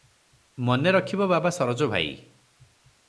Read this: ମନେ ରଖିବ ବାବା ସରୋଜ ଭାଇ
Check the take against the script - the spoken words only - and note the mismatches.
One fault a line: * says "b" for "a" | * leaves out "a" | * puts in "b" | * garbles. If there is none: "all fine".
all fine